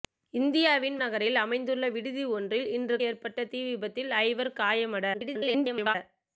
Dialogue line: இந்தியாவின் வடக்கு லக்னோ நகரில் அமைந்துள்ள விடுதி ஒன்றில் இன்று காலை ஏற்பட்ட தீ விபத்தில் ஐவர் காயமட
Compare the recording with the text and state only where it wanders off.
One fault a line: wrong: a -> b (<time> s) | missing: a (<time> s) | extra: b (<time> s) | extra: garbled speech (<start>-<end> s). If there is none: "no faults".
missing: வடக்கு லக்னோ (0.9 s)
missing: காலை (3.0 s)
extra: garbled speech (5.1-6.0 s)